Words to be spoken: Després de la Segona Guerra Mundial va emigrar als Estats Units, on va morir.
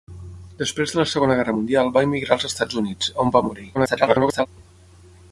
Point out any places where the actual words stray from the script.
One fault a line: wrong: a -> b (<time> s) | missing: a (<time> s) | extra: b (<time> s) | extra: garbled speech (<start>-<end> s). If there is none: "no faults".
extra: garbled speech (3.7-4.5 s)